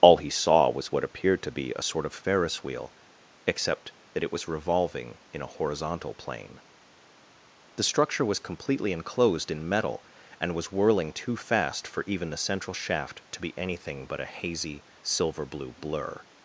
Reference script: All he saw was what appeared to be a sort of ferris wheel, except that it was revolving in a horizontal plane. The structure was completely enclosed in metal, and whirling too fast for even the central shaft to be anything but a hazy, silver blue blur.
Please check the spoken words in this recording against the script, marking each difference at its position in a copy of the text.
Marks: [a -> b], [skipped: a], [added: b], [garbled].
All he saw was what appeared to be a sort of ferris wheel, except that it was revolving in a horizontal plane. The structure was completely enclosed in metal, and [added: was] whirling too fast for even the central shaft to be anything but a hazy, silver blue blur.